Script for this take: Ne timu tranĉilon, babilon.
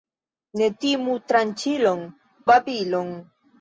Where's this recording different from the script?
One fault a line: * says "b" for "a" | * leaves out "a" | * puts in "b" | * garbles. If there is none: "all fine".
all fine